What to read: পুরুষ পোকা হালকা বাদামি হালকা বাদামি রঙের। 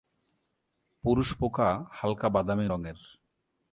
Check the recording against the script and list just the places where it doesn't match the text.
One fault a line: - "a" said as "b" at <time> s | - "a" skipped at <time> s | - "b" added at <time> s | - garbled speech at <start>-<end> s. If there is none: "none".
- "হালকা বাদামি" skipped at 2.7 s